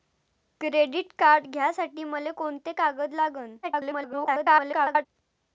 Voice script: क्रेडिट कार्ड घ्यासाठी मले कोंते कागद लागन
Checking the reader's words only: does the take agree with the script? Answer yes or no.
no